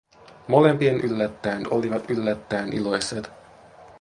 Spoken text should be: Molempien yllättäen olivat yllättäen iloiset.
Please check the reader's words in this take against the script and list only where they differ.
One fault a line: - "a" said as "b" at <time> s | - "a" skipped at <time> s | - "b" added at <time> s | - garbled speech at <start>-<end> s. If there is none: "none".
none